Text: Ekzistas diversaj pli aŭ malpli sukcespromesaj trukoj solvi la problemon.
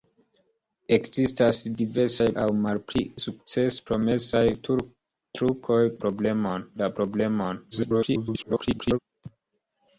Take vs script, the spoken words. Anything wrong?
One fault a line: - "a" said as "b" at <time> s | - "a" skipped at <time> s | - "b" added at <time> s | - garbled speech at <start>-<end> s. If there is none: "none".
- "pli" skipped at 2.2 s
- "solvi" said as "problemon" at 6.0 s
- garbled speech at 7.7-9.0 s